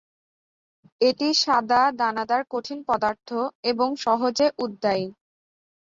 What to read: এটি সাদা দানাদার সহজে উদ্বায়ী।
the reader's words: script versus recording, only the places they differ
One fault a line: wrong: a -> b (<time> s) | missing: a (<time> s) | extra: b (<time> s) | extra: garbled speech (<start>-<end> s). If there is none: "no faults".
extra: কঠিন পদার্থ এবং (2.5 s)